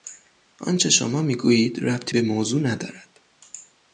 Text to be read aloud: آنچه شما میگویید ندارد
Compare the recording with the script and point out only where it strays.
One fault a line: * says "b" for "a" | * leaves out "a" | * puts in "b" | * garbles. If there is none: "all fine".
* puts in "ربطی به موضوع"